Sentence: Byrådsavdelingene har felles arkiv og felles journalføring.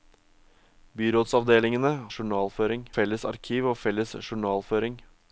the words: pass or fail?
fail